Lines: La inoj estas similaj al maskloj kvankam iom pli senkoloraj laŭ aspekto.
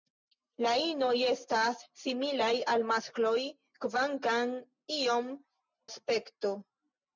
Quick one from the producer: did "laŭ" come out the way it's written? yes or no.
no